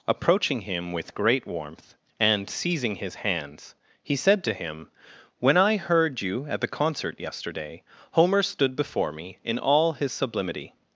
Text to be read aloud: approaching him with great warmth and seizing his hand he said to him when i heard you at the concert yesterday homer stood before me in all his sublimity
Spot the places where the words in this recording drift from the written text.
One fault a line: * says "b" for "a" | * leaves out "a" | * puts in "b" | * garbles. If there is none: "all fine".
* says "hands" for "hand"